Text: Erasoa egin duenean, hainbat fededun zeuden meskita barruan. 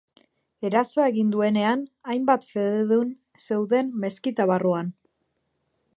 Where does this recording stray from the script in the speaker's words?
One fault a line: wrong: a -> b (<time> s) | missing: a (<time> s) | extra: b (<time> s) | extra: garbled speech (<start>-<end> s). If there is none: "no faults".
no faults